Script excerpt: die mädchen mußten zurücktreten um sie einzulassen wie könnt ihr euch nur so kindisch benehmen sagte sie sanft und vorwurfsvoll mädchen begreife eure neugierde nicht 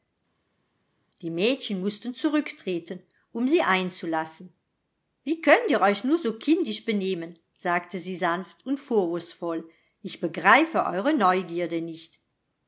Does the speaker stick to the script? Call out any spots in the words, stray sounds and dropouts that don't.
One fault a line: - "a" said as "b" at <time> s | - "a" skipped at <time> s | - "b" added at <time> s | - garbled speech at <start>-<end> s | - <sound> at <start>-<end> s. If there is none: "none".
- "mädchen" said as "ich" at 10.0 s